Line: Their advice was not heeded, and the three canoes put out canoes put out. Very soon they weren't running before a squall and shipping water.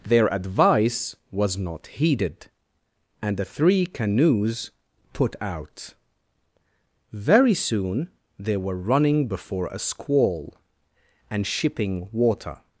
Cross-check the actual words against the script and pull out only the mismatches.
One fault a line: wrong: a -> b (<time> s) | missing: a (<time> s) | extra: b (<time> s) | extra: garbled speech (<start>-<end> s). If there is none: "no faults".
missing: canoes put out (5.9 s)
wrong: weren't -> were (8.6 s)